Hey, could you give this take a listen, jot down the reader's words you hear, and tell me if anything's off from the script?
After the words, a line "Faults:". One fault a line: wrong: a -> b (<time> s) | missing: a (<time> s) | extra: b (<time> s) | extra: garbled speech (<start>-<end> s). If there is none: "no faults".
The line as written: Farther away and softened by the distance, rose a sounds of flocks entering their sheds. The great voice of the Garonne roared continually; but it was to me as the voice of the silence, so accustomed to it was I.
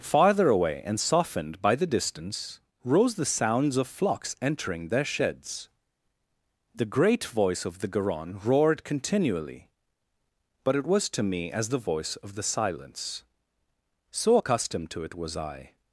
Farther away and softened by the distance, rose the sounds of flocks entering their sheds. The great voice of the Garonne roared continually; but it was to me as the voice of the silence, so accustomed to it was I.
Faults:
wrong: a -> the (3.1 s)